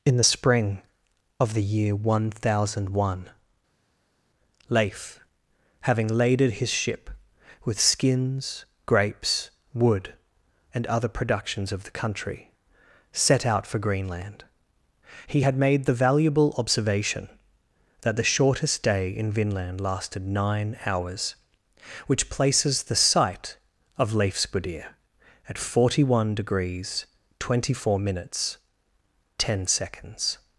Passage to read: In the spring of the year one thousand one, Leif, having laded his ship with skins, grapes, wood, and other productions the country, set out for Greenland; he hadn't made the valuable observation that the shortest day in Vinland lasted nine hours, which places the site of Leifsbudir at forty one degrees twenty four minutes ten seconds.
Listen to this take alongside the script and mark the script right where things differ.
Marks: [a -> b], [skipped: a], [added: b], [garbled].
In the spring of the year one thousand one, Leif, having laded his ship with skins, grapes, wood, and other productions [added: of] the country, set out for Greenland; he [hadn't -> had] made the valuable observation that the shortest day in Vinland lasted nine hours, which places the site of Leifsbudir at forty one degrees twenty four minutes ten seconds.